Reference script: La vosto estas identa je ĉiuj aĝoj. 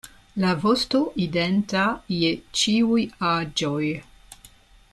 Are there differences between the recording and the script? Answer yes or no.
yes